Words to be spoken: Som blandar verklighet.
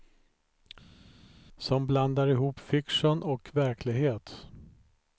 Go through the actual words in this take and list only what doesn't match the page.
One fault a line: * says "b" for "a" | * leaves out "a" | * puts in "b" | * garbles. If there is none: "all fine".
* puts in "ihop fiktion och"